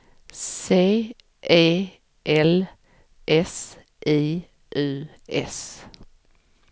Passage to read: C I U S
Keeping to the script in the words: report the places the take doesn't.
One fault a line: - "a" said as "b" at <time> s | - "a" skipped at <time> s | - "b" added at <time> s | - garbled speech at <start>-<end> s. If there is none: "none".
- "E L S" added at 1.5 s